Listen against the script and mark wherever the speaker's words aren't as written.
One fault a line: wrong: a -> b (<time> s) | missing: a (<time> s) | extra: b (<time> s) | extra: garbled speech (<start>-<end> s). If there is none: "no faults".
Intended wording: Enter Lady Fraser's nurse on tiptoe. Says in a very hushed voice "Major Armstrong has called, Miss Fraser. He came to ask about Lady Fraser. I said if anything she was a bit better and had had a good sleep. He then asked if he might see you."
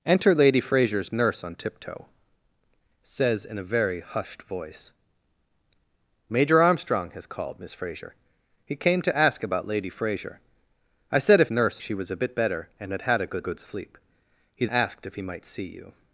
wrong: anything -> nurse (11.5 s)
extra: good (13.4 s)
missing: then (14.7 s)